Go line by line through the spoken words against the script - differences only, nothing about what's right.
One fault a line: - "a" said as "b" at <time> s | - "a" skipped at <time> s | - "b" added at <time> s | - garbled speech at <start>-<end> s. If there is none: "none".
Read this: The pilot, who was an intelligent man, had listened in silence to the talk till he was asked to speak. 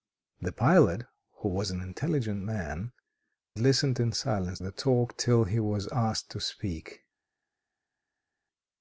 - "had" skipped at 2.9 s
- "to" skipped at 4.6 s